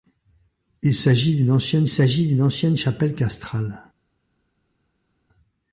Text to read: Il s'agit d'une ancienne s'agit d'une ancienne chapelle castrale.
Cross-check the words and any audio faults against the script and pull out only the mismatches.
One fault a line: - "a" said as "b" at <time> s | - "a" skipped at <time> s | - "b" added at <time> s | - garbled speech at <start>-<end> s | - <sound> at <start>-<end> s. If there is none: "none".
none